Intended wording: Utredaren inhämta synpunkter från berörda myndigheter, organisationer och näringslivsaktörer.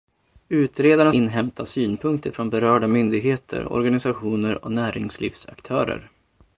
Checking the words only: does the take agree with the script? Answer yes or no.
yes